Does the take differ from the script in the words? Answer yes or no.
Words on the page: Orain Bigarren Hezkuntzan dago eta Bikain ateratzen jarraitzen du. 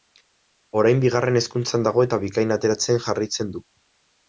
no